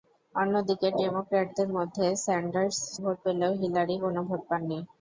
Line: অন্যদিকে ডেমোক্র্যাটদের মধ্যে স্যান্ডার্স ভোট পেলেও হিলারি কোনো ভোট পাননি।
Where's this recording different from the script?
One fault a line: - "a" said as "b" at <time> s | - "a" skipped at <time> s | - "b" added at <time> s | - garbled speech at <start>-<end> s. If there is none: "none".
none